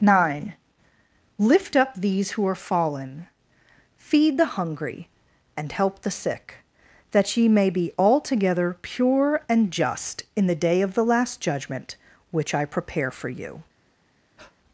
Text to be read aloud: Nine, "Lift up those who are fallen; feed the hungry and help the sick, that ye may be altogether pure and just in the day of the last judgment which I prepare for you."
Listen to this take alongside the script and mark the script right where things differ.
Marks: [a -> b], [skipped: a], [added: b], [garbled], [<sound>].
Nine, "Lift up [those -> these] who are fallen; feed the hungry and help the sick, that ye may be altogether pure and just in the day of the last judgment which I prepare for you." [breath]